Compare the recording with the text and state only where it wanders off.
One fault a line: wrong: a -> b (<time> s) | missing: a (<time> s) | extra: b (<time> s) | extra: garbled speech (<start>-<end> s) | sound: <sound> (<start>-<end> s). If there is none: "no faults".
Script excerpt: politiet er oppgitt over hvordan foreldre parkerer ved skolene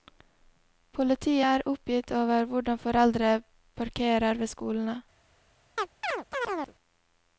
sound: chirp (5.8-6.8 s)